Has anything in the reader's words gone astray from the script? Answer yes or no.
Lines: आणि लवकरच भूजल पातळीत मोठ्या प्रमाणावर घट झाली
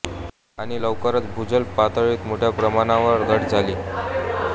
no